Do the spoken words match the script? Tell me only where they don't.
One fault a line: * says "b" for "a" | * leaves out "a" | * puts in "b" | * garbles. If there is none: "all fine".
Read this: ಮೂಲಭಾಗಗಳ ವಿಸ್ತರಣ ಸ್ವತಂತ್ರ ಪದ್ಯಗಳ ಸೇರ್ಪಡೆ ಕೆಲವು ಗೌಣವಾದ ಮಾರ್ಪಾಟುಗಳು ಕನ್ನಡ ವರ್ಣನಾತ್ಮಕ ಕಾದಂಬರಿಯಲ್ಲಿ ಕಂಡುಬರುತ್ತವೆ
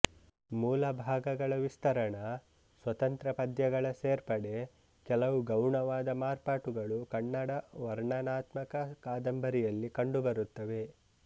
all fine